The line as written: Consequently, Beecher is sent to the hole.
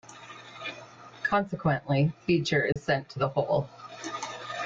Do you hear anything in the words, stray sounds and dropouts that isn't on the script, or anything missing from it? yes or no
yes